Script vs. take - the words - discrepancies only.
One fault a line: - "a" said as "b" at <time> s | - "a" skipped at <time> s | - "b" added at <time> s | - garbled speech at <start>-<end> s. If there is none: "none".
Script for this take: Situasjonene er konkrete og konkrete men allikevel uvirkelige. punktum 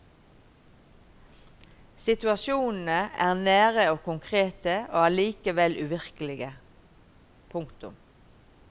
- "konkrete" said as "nære" at 3.4 s
- "men" said as "og" at 4.9 s